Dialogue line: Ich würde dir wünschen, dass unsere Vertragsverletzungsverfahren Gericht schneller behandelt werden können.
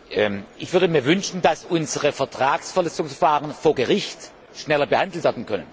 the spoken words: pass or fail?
fail